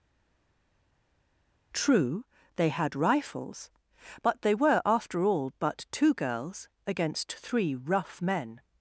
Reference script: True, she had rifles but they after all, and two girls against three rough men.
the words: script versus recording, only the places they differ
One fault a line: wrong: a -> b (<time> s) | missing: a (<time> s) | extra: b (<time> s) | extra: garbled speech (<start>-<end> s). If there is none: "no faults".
wrong: she -> they (2.6 s)
extra: were (4.5 s)
wrong: and -> but (5.6 s)